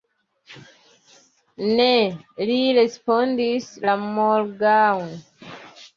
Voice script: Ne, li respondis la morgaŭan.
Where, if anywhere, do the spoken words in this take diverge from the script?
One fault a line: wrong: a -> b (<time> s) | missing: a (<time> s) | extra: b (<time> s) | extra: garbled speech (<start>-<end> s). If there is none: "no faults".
no faults